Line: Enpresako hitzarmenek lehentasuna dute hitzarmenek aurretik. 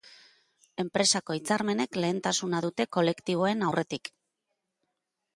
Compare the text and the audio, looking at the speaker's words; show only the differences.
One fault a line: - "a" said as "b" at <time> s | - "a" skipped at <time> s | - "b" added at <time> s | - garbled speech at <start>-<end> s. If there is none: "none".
- "hitzarmenek" said as "kolektiboen" at 3.0 s